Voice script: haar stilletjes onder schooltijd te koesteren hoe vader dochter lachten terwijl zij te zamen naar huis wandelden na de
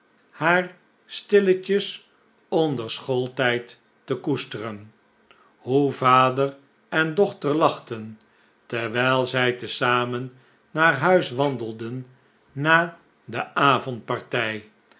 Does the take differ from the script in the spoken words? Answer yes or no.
yes